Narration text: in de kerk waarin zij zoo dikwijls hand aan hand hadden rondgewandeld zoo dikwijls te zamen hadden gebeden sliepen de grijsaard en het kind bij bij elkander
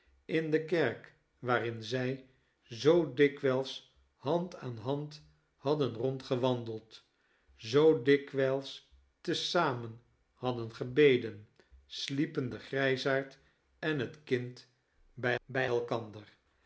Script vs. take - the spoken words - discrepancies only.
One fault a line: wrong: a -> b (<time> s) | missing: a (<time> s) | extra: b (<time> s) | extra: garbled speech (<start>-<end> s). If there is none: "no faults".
no faults